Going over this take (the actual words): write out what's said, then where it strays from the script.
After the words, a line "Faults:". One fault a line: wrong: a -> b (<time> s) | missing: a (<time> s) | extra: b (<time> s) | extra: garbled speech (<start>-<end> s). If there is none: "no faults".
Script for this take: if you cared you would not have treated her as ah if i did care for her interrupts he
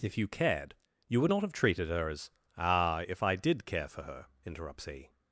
if you cared you would not have treated her as ah if i did care for her interrupts he
Faults:
no faults